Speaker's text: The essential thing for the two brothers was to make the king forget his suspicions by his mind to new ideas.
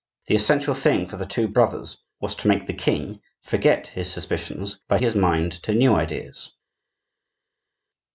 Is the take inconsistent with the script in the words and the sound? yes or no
no